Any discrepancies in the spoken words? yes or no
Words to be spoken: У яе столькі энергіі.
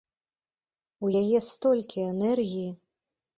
no